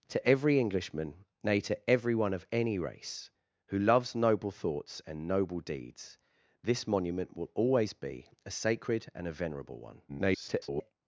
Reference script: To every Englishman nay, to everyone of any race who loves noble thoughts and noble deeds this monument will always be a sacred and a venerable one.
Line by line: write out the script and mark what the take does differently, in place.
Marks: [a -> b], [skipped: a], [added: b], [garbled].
To every Englishman nay, to everyone of any race who loves noble thoughts and noble deeds this monument will always be a sacred and a venerable one. [garbled]